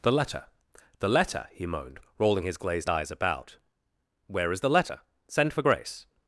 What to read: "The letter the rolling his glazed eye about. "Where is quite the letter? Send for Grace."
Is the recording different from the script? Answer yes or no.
yes